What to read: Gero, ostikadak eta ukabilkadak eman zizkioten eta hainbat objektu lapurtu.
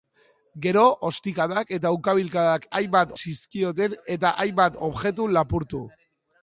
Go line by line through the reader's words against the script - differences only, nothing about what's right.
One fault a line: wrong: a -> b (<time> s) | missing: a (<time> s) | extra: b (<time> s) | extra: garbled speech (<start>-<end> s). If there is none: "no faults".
wrong: eman -> hainbat (2.8 s)